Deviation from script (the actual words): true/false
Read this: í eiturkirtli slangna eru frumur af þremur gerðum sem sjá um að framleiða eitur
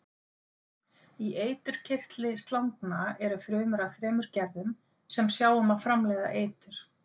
false